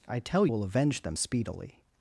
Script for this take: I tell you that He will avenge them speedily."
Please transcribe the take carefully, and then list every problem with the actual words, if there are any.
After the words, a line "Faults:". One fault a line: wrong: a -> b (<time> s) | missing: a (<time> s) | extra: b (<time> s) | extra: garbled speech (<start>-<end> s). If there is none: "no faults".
I tell will avenge them speedily."
Faults:
missing: you that He (0.5 s)